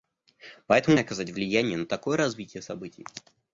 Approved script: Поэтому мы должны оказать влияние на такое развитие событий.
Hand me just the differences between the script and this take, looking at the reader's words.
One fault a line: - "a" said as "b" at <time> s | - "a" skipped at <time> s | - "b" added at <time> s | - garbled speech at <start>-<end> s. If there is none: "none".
- "мы должны" skipped at 1.0 s